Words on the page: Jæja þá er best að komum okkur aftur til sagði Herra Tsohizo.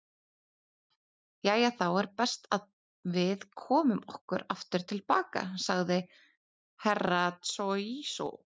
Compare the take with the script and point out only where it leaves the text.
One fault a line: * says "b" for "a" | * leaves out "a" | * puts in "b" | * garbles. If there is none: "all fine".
* puts in "við"
* puts in "baka"